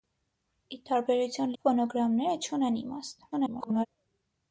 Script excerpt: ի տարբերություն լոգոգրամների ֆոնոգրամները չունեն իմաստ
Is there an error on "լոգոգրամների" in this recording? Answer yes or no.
yes